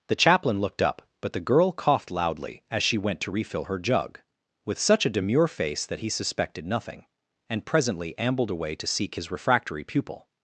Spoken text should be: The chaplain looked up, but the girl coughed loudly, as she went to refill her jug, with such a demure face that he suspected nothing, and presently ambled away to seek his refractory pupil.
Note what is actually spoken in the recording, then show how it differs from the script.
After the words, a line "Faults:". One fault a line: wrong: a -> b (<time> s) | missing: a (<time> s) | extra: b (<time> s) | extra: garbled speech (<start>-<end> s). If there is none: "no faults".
The chaplain looked up, but the girl coughed loudly, as she went to refill her jug, with such a demure face that he suspected nothing, and presently ambled away to seek his refractory pupil.
Faults:
no faults